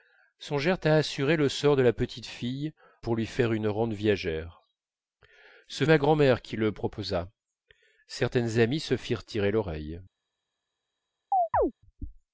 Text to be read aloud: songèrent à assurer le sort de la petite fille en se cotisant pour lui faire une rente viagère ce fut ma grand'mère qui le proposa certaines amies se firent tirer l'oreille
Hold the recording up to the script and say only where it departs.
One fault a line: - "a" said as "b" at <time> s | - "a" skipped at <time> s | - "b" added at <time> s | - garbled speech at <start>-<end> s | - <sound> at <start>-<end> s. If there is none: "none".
- "en se cotisant" skipped at 2.7 s
- "fut" skipped at 5.8 s
- chirp at 11.3-11.7 s